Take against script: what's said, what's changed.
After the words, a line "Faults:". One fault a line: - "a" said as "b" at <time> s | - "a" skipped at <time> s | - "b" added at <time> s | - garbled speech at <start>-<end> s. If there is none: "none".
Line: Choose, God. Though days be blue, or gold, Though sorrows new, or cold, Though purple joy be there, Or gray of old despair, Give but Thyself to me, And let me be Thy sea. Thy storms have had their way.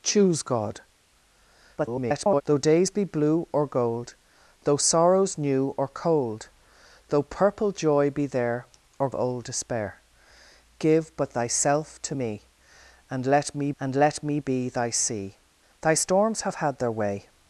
Choose, God. [garbled] Though days be blue, or gold, Though sorrows new, or cold, Though purple joy be there, Or old despair, Give but Thyself to me, And let me And let me be Thy sea. Thy storms have had their way.
Faults:
- garbled speech at 1.8-2.4 s
- "gray of" skipped at 9.1 s
- "And let me" added at 13.8 s